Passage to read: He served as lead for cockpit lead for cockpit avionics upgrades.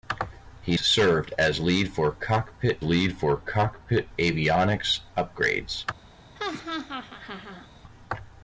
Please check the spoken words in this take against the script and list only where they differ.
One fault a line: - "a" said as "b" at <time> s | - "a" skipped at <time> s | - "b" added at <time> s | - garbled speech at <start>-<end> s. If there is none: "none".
none